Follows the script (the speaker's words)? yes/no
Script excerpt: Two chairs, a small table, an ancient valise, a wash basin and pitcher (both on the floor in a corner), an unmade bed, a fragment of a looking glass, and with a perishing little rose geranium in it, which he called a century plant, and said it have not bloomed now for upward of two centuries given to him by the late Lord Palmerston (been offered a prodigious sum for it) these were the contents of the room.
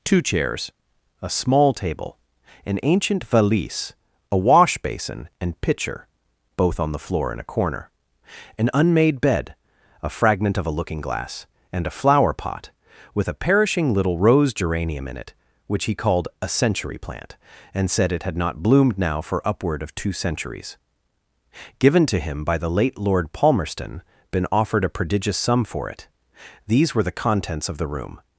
no